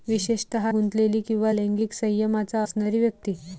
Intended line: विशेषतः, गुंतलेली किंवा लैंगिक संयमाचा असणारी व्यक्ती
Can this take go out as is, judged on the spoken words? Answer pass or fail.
pass